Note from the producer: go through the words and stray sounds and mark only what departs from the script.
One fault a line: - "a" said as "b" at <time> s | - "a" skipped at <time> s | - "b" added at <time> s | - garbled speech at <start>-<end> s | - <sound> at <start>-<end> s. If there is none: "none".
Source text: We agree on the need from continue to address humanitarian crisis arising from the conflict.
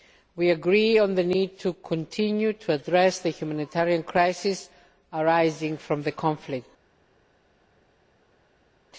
- "from" said as "to" at 1.6 s
- "the" added at 3.2 s